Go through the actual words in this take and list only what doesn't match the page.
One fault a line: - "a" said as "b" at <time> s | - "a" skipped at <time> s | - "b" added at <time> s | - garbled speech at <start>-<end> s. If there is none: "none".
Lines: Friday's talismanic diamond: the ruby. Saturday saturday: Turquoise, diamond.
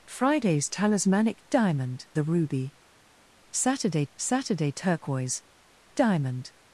none